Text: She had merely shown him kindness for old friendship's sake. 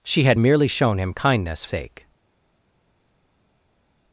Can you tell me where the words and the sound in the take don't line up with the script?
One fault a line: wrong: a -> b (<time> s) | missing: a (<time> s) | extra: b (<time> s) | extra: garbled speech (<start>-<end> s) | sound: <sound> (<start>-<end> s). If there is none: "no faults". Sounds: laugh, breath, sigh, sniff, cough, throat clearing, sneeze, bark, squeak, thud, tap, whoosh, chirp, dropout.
missing: for old friendship's (1.6 s)